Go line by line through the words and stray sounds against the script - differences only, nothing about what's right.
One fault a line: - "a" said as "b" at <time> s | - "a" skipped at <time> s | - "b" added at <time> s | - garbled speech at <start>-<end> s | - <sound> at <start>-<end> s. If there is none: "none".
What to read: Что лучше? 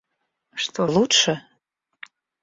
none